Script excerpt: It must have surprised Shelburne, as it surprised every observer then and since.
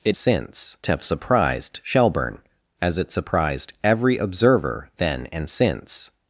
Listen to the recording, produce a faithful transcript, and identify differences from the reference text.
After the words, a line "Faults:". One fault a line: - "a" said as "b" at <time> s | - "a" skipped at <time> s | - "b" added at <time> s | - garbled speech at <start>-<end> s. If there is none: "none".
It since have surprised Shelburne, as it surprised every observer then and since.
Faults:
- "must" said as "since" at 0.1 s